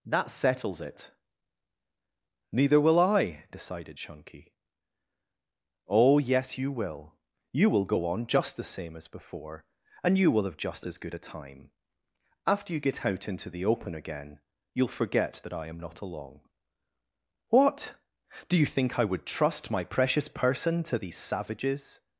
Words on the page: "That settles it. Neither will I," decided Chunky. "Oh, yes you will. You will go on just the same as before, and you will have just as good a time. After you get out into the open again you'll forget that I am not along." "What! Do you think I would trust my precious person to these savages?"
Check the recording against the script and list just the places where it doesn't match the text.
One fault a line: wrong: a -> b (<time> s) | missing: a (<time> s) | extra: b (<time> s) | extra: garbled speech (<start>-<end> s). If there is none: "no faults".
no faults